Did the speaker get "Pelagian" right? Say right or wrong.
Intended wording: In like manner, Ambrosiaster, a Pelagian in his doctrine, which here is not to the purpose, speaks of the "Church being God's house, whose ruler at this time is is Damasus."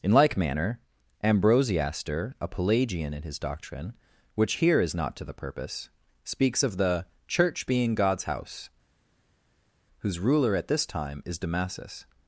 right